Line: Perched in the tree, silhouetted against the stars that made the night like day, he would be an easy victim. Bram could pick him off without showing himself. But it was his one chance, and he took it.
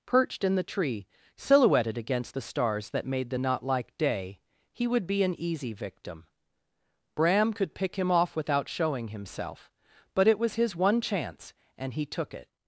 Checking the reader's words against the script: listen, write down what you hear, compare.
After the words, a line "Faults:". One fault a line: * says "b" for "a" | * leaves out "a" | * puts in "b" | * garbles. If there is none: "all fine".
Perched in the tree, silhouetted against the stars that made the knot like day, he would be an easy victim. Bram could pick him off without showing himself. But it was his one chance, and he took it.
Faults:
* says "knot" for "night"